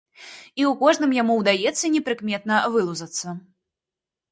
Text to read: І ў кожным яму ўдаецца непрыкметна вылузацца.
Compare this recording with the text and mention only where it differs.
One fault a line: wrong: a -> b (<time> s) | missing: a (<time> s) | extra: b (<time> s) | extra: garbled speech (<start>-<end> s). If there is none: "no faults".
no faults